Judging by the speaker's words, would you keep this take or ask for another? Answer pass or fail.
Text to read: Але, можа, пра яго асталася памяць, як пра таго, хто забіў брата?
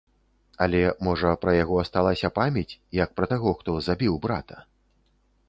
pass